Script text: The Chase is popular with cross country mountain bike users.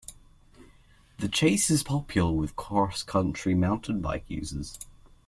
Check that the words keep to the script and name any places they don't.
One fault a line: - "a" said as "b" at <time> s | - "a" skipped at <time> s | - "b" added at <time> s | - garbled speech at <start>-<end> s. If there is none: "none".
none